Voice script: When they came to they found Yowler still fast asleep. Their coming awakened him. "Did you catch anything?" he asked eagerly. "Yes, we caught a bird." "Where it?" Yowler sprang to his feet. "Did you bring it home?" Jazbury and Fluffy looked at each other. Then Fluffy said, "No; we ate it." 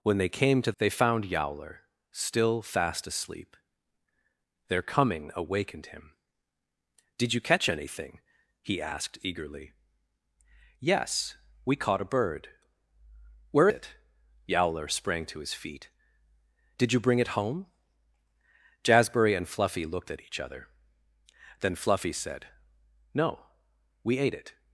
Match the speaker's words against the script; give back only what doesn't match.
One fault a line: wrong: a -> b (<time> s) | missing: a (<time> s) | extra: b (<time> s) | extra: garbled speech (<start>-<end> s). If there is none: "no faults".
no faults